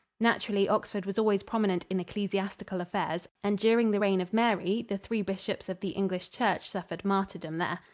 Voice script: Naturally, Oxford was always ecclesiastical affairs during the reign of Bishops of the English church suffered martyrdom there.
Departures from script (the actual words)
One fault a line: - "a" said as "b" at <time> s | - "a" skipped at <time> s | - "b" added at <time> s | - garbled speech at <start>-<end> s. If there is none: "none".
- "prominent in" added at 1.4 s
- "and" added at 3.4 s
- "Mary the three" added at 4.3 s